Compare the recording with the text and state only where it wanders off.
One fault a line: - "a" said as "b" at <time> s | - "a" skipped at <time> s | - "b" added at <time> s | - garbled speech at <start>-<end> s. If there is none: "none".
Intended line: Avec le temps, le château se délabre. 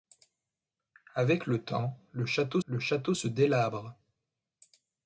- "le château" added at 2.6 s